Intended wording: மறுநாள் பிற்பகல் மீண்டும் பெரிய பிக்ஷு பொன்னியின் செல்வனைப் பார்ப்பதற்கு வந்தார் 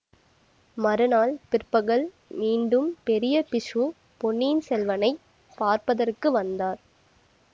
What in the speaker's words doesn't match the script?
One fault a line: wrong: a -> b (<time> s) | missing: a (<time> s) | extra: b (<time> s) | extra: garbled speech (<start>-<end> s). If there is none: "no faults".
no faults